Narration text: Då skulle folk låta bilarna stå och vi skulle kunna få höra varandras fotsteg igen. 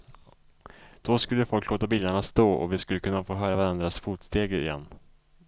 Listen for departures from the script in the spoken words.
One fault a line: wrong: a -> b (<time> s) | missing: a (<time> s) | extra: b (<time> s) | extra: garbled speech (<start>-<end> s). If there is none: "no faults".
no faults